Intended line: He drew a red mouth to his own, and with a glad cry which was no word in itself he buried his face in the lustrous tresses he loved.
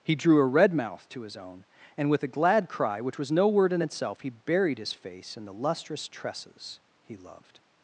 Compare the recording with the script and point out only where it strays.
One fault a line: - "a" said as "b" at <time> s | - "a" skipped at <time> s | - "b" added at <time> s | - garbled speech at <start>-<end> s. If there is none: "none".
none